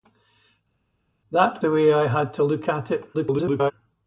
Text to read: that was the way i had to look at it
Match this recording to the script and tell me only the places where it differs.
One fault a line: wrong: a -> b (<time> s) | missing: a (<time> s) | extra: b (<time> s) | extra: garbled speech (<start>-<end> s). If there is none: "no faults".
missing: was (1.6 s)
extra: garbled speech (3.1-3.7 s)